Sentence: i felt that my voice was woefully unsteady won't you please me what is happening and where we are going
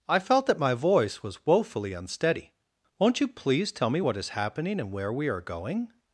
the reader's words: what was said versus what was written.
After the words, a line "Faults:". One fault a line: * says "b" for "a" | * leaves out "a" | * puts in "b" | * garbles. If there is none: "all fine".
i felt that my voice was woefully unsteady won't you please tell me what is happening and where we are going
Faults:
* puts in "tell"